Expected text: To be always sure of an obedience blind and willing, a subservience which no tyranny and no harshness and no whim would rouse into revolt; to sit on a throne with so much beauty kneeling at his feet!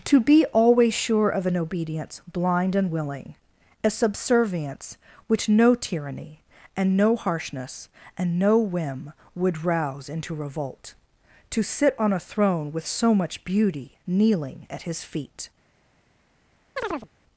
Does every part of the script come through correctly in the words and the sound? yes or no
no